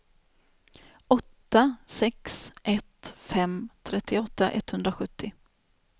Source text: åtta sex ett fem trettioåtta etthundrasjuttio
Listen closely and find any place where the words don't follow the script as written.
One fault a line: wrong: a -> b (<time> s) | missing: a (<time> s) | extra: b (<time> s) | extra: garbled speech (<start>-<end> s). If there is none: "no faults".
no faults